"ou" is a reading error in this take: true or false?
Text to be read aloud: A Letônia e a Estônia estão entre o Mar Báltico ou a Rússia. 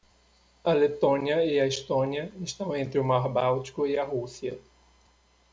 true